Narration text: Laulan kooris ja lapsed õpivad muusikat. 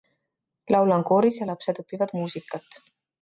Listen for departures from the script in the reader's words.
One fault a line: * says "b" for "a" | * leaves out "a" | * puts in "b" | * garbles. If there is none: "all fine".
all fine